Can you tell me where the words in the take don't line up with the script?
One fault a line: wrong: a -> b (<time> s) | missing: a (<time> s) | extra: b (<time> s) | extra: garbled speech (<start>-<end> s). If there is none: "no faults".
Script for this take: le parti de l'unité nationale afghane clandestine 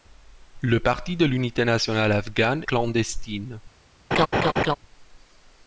no faults